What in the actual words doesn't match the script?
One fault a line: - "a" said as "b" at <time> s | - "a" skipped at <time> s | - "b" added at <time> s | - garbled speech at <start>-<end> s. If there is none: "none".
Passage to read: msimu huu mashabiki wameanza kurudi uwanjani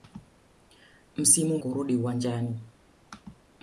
- "huu mashabiki wameanza" skipped at 1.6 s